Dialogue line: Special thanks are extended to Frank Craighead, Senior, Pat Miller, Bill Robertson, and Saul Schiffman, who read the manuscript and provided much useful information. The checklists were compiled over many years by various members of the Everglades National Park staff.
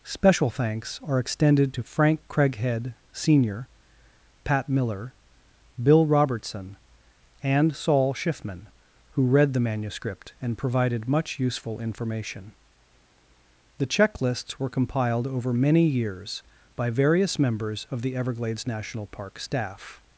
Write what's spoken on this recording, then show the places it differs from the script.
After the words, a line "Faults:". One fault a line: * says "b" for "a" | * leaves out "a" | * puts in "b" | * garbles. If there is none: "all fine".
Special thanks are extended to Frank Craighead, Senior, Pat Miller, Bill Robertson, and Saul Schiffman, who read the manuscript and provided much useful information. The checklists were compiled over many years by various members of the Everglades National Park staff.
Faults:
all fine